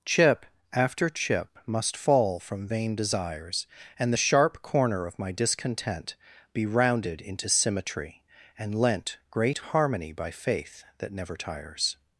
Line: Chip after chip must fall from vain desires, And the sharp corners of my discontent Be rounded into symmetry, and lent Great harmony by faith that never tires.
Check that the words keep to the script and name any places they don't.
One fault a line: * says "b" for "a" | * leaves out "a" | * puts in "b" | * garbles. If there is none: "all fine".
* says "corner" for "corners"